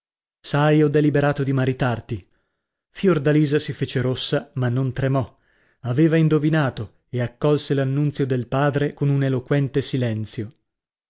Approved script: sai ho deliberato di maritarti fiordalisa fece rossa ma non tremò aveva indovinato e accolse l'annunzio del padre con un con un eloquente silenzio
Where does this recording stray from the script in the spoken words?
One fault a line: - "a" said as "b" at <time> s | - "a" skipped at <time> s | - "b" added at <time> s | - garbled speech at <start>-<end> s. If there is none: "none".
- "si" added at 3.6 s
- "con un" skipped at 9.2 s